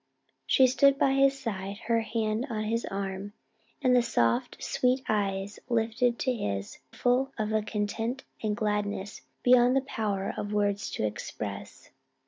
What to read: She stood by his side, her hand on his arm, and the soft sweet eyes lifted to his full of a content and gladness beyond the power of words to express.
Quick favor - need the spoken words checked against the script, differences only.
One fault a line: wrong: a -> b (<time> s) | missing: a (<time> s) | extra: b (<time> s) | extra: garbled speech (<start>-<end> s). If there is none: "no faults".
no faults